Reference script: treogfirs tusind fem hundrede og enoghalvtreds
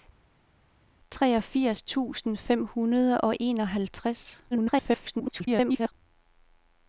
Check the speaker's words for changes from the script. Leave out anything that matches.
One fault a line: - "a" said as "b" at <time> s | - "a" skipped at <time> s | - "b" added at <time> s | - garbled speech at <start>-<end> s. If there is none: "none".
- garbled speech at 4.5-5.9 s